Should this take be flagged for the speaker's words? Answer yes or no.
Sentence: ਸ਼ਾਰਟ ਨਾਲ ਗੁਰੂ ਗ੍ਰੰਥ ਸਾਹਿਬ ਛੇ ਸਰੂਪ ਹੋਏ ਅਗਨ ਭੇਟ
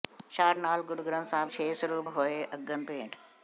no